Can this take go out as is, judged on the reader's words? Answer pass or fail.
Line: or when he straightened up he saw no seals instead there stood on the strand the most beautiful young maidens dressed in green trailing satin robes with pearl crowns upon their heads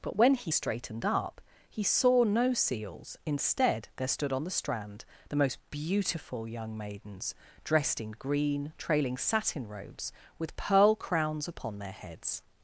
fail